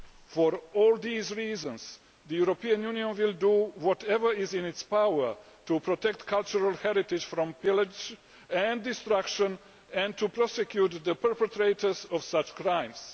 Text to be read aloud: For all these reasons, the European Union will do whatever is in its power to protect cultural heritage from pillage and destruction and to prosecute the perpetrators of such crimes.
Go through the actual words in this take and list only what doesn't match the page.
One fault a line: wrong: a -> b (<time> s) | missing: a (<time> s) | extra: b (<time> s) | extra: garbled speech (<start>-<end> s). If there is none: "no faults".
no faults